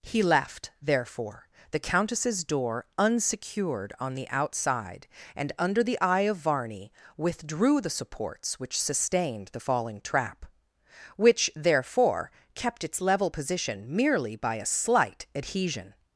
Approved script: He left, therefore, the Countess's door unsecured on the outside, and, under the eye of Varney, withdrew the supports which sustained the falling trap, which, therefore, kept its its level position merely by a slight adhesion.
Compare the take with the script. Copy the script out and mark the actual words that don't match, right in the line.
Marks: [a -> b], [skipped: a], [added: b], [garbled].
He left, therefore, the Countess's door unsecured on the outside, and, under the eye of Varney, withdrew the supports which sustained the falling trap, which, therefore, kept its [skipped: its] level position merely by a slight adhesion.